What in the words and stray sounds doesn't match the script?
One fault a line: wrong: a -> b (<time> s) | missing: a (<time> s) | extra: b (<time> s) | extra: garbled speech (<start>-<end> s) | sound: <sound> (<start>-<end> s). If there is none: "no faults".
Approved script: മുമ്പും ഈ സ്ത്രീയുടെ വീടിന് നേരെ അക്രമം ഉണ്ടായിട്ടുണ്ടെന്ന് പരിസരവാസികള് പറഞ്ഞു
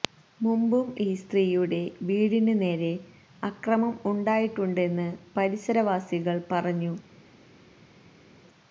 no faults